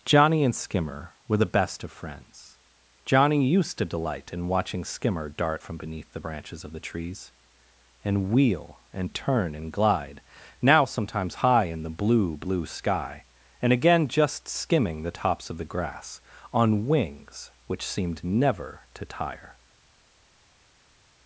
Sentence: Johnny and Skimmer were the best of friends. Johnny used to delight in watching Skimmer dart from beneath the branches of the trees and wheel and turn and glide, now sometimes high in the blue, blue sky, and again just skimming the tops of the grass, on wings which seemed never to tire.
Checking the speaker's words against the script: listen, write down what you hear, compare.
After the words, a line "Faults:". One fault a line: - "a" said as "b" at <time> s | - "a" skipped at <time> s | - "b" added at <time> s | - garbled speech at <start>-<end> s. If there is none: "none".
Johnny and Skimmer were the best of friends. Johnny used to delight in watching Skimmer dart from beneath the branches of the trees and wheel and turn and glide, now sometimes high in the blue, blue sky, and again just skimming the tops of the grass, on wings which seemed never to tire.
Faults:
none